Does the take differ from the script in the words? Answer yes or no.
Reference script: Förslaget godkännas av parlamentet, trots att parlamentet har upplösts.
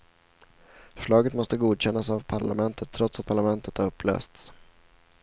yes